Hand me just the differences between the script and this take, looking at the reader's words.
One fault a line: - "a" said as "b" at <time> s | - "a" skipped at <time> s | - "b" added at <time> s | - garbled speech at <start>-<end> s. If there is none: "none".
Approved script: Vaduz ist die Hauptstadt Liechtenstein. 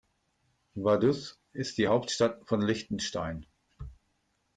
- "von" added at 2.5 s